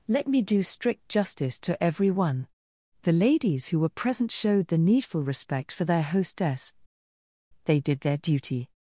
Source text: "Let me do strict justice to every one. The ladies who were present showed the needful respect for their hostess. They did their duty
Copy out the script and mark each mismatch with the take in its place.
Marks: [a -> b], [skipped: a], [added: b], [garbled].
"Let me do strict justice to every one. The ladies who were present showed the needful respect for their hostess. They did their duty